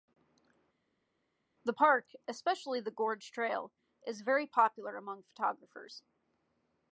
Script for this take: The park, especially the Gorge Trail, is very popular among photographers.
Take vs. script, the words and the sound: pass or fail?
pass